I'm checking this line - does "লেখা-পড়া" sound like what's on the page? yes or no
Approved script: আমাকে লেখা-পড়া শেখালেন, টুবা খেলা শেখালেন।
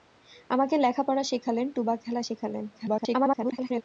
yes